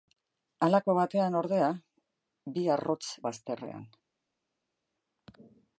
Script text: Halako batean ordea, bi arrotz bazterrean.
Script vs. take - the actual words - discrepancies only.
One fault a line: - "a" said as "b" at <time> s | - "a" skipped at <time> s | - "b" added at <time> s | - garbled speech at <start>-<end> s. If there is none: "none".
none